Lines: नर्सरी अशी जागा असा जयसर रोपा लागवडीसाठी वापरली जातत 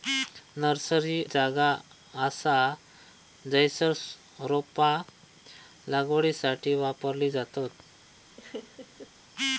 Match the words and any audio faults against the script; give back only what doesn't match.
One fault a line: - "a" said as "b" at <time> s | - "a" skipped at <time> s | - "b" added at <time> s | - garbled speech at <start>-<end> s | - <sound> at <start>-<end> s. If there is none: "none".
- "अशी" skipped at 1.2 s
- laugh at 8.4-9.1 s